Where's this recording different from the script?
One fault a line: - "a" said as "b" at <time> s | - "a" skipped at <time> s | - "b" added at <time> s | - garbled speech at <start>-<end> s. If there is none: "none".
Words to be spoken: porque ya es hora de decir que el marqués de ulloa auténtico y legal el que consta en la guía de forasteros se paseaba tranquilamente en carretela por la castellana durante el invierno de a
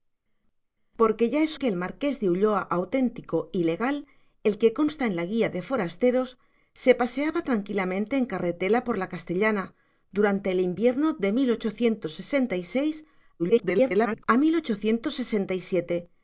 - "hora de decir" skipped at 1.6 s
- garbled speech at 13.4-14.2 s